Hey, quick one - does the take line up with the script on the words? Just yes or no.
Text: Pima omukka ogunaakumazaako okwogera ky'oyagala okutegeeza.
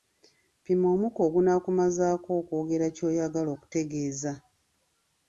yes